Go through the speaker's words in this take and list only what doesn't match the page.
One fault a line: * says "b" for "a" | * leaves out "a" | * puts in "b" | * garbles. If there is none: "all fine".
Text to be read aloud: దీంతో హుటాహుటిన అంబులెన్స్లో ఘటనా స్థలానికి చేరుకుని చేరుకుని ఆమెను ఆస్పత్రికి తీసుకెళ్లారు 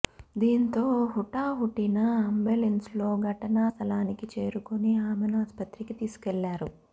* leaves out "చేరుకుని"